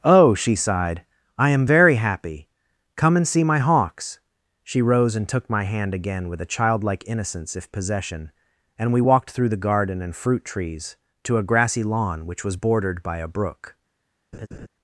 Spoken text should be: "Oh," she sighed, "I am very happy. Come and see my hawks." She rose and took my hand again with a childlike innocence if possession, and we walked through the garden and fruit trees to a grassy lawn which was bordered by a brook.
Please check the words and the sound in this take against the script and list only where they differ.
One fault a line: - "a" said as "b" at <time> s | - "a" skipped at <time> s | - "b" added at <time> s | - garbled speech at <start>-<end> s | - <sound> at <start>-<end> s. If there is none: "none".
- laugh at 14.3-14.7 s